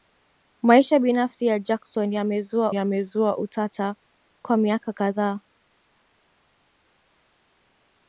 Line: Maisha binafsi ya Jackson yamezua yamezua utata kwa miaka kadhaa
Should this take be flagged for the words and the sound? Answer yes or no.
no